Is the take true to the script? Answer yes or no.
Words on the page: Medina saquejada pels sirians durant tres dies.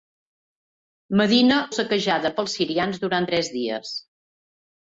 yes